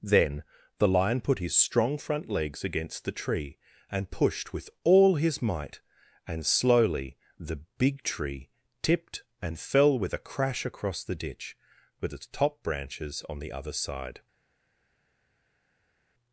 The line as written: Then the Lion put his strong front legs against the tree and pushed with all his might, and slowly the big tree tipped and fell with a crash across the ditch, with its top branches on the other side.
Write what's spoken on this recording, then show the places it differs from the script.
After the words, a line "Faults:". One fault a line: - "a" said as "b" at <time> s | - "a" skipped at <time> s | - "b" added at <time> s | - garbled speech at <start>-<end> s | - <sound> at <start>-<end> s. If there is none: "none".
Then the Lion put his strong front legs against the tree and pushed with all his might, and slowly the big tree tipped and fell with a crash across the ditch, with its top branches on the other side.
Faults:
none